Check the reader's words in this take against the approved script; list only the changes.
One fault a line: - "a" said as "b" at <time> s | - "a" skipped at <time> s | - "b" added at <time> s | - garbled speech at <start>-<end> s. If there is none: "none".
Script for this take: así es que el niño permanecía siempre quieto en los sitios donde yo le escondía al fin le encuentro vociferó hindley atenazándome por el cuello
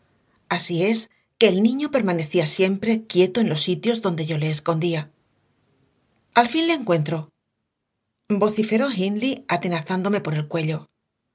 none